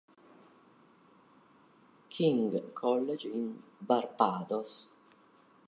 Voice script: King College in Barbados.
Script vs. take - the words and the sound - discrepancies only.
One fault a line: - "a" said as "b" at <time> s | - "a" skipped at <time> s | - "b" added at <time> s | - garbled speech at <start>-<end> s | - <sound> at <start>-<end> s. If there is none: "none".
none